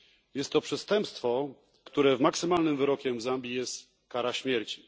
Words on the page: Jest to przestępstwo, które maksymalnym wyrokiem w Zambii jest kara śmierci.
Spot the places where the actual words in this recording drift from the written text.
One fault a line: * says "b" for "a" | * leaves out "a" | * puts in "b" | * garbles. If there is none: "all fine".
all fine